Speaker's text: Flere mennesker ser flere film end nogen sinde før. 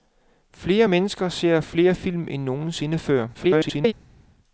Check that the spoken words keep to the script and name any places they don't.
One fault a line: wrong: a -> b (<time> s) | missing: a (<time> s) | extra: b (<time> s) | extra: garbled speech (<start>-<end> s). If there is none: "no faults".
extra: garbled speech (3.3-3.9 s)